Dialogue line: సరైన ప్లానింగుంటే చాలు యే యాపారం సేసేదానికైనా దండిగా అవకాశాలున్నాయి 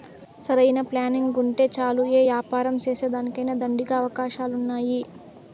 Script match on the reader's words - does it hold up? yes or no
yes